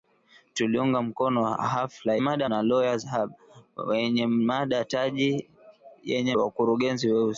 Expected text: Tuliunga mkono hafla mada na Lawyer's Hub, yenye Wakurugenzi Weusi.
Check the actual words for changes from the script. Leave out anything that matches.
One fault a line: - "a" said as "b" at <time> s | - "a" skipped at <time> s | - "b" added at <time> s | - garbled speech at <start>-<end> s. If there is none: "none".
none